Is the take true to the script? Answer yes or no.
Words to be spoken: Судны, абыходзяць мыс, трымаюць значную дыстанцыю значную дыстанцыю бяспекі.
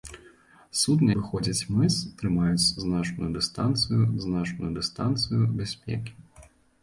yes